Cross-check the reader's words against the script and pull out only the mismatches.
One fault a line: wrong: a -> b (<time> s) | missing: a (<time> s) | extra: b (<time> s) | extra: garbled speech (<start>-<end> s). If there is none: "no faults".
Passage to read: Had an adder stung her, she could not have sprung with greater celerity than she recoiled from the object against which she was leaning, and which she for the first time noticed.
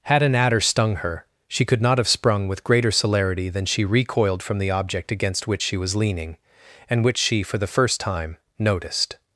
no faults